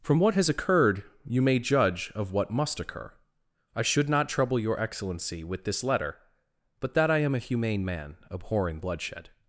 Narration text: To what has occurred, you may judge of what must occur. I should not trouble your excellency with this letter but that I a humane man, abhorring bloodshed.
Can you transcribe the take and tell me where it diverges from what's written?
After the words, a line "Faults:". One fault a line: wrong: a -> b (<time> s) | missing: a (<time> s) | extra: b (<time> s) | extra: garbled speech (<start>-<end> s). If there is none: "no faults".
From what has occurred, you may judge of what must occur. I should not trouble your excellency with this letter but that I am a humane man, abhorring bloodshed.
Faults:
wrong: To -> From (0.0 s)
extra: am (7.2 s)